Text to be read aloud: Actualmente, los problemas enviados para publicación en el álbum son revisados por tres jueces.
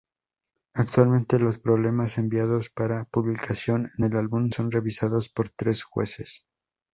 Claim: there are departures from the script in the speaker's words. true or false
false